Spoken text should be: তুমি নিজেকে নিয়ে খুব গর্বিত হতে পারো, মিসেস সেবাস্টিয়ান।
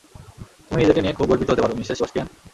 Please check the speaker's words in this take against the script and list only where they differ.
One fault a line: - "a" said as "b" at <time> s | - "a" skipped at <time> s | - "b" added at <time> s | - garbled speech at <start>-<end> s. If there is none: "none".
none